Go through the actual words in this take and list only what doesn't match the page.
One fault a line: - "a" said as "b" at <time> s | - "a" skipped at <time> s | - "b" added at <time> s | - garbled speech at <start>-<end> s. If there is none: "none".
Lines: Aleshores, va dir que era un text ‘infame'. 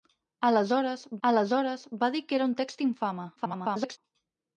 - "aleshores" added at 1.3 s
- garbled speech at 3.4-4.0 s